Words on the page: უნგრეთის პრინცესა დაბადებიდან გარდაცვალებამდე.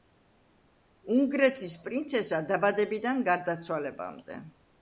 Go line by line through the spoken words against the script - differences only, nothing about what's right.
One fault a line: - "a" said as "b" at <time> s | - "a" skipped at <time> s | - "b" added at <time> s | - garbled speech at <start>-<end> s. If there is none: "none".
none